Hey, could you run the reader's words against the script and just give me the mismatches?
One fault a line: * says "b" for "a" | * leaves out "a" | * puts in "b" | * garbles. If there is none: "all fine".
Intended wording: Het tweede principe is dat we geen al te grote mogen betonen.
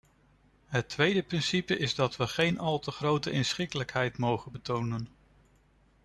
* puts in "inschikkelijkheid"